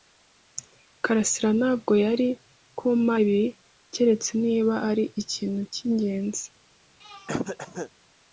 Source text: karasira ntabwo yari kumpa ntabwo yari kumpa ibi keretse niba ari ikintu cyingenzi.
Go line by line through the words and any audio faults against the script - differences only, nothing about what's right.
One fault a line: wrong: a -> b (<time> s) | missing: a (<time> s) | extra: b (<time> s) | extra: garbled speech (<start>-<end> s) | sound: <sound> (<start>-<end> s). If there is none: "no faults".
missing: ntabwo yari kumpa (3.1 s)
sound: throat clearing (7.0-7.9 s)